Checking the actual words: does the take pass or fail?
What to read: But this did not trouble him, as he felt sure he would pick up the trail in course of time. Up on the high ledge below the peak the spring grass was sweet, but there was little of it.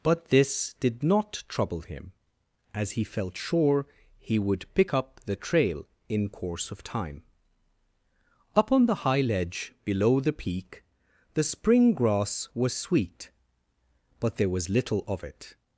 pass